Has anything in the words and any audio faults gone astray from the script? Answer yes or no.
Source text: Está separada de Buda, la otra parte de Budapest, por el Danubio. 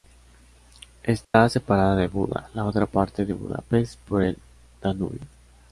yes